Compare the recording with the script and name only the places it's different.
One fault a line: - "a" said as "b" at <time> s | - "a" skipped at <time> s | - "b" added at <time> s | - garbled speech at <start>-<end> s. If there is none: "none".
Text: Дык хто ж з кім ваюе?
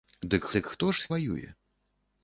- "дык" added at 0.6 s
- "кім" skipped at 1.1 s